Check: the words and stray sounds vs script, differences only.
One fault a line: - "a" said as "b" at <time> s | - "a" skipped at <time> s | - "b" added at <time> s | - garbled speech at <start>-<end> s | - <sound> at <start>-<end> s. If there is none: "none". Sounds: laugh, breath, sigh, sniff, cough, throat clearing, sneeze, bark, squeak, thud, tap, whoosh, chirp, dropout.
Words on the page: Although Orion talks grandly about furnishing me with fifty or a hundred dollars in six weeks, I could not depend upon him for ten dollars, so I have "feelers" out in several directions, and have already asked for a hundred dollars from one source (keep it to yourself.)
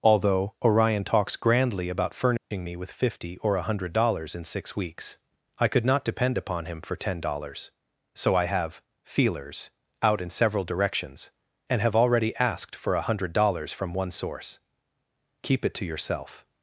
- dropout at 2.4-2.5 s